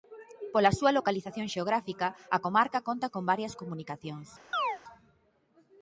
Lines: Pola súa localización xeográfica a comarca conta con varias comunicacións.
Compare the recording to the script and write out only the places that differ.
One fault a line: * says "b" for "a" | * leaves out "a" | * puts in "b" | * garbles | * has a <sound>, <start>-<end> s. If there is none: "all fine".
* has a chirp, 4.5-4.8 s